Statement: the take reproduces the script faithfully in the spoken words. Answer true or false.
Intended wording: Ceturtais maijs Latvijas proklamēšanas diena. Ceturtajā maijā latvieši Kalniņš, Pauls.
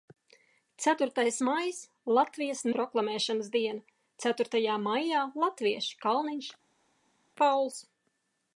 true